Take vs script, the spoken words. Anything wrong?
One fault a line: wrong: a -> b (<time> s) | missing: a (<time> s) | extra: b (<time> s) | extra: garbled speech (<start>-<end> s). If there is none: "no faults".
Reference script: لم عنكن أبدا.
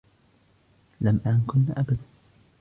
no faults